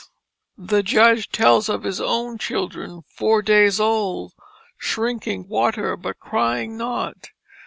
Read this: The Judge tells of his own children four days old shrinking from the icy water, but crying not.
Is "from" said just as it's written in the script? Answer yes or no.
no